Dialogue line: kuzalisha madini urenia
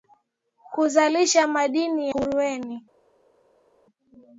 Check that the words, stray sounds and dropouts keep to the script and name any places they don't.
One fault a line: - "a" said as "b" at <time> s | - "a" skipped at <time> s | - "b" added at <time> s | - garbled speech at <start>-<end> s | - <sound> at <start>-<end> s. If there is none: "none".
none